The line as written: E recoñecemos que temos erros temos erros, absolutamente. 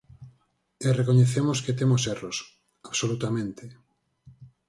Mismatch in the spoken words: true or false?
true